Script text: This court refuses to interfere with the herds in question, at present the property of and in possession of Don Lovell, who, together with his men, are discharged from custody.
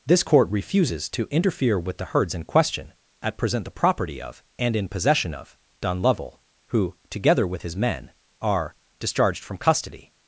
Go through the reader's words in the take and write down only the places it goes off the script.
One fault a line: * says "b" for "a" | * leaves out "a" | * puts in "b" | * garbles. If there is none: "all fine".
all fine